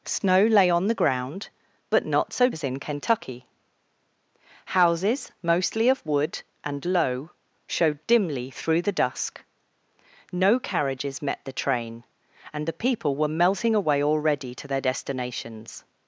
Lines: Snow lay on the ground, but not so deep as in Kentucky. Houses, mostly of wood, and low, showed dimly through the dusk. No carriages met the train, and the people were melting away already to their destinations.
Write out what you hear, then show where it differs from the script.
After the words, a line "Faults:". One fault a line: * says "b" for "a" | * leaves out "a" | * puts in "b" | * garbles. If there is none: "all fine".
Snow lay on the ground, but not so as in Kentucky. Houses, mostly of wood, and low, showed dimly through the dusk. No carriages met the train, and the people were melting away already to their destinations.
Faults:
* leaves out "deep"